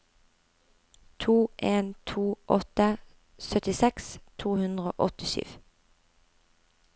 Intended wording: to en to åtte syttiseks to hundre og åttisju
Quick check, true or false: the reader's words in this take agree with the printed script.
true